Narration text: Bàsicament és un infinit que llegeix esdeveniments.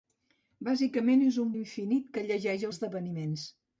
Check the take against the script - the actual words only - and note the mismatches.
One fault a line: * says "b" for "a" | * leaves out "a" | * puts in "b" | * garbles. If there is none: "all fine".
all fine